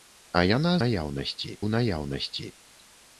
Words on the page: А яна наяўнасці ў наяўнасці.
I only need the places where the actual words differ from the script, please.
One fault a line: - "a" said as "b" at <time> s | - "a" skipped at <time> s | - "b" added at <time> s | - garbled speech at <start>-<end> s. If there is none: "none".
none